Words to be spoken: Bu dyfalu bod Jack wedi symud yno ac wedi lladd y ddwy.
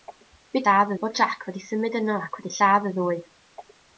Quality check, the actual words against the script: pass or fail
fail